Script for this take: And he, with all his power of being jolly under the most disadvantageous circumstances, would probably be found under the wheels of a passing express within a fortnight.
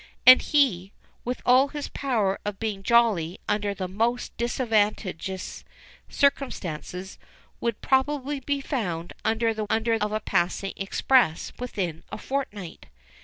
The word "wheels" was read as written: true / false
false